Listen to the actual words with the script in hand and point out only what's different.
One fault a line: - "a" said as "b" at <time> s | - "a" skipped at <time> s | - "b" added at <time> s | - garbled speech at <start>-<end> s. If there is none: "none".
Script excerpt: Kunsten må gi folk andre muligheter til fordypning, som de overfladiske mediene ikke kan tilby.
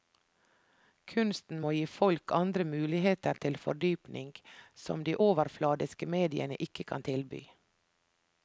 none